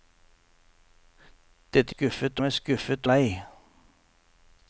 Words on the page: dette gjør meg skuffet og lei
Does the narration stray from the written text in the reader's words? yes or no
yes